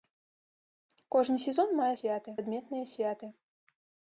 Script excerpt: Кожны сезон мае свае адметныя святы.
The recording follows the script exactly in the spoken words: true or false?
false